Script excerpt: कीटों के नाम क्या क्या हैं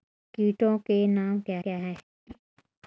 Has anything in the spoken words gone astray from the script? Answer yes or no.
no